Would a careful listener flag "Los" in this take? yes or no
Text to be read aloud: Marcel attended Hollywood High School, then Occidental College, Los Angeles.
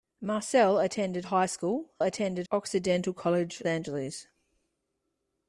yes